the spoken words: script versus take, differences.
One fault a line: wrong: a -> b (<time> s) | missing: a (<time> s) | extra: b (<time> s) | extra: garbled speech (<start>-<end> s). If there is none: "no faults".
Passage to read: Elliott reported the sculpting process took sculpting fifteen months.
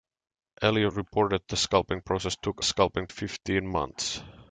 no faults